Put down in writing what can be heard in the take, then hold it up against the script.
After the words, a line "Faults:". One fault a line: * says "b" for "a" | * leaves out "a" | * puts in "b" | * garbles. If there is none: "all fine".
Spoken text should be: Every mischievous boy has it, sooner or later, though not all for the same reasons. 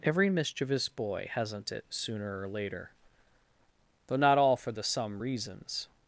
Every mischievous boy hasn't it, sooner or later, though not all for the some reasons.
Faults:
* says "hasn't" for "has"
* says "some" for "same"